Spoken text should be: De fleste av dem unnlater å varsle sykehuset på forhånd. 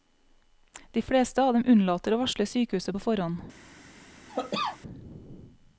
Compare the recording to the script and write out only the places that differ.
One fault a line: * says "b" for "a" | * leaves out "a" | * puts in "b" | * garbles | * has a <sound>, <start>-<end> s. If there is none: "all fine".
* has a cough, 4.3-4.8 s